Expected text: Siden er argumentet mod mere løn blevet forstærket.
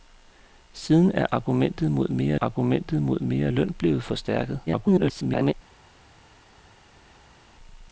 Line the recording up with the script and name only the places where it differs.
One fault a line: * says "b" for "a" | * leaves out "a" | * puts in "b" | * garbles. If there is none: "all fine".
* puts in "argumentet mod mere"
* garbles